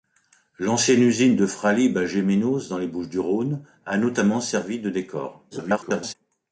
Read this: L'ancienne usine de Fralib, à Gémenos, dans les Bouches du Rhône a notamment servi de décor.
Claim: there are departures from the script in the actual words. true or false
true